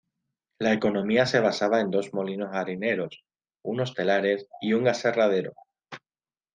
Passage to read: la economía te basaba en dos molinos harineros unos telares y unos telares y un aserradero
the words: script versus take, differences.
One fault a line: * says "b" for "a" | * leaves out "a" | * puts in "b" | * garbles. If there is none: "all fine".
* says "se" for "te"
* leaves out "unos telares y"